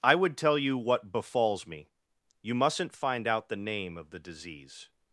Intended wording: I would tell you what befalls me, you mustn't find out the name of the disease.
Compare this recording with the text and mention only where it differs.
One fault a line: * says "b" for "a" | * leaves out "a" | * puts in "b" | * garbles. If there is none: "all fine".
all fine